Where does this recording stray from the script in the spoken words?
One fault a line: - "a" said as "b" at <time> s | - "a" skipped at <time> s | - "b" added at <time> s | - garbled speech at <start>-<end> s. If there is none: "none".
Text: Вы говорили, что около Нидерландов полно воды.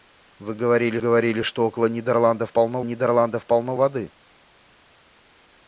- "говорили" added at 1.0 s
- "Нидерландов полно" added at 2.8 s